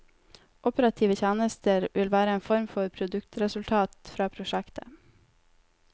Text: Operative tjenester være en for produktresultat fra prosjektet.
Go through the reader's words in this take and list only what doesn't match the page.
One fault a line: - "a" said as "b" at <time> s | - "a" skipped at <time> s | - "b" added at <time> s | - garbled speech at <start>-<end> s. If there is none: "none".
- "vil" added at 1.9 s
- "form" added at 2.5 s